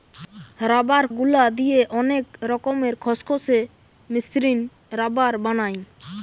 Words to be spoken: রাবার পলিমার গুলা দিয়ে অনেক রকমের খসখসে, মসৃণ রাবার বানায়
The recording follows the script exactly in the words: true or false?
false